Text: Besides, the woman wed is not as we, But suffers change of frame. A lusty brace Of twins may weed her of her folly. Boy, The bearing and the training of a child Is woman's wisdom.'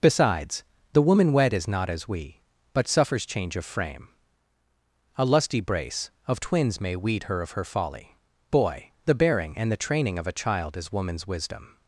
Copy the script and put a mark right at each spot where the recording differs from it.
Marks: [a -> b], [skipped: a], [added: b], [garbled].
Besides, the woman wed is not as we, But suffers change of frame. A lusty brace Of twins may weed her of her folly. Boy, The bearing and the training of a child Is woman's wisdom.'